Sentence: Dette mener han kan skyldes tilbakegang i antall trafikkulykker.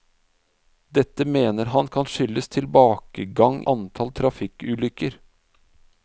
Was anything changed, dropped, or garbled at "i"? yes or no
yes